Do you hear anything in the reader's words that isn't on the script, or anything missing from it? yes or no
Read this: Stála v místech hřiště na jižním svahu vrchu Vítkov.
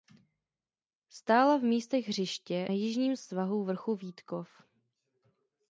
yes